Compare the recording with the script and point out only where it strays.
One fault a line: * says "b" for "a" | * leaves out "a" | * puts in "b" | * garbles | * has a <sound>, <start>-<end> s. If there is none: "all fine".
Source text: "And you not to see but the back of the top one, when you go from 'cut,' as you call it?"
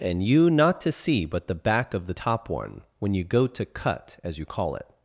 * says "to" for "from"